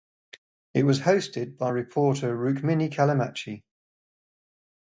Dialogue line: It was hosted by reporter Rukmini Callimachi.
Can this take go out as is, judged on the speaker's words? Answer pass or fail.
pass